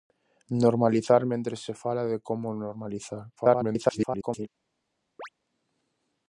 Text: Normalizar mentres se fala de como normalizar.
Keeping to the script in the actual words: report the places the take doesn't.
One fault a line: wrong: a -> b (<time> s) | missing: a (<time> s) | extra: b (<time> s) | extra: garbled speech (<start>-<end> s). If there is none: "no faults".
extra: garbled speech (3.4-4.5 s)